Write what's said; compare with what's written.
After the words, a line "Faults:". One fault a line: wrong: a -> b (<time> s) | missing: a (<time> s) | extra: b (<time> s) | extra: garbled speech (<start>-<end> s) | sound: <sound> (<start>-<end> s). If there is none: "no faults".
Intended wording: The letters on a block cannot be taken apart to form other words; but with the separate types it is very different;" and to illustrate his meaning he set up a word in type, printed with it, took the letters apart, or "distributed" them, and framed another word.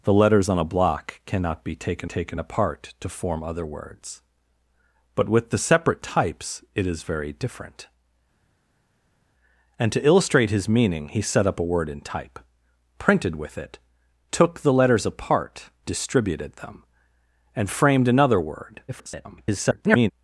The letters on a block cannot be taken taken apart to form other words; but with the separate types it is very different;" and to illustrate his meaning he set up a word in type, printed with it, took the letters apart, "distributed" them, and framed another word. [garbled]
Faults:
extra: taken (2.0 s)
missing: or (15.7 s)
extra: garbled speech (18.9-20.1 s)